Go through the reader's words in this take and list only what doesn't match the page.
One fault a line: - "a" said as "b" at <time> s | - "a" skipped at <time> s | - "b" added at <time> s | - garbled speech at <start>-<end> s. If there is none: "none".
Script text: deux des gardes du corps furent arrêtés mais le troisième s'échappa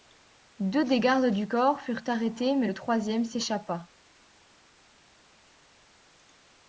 none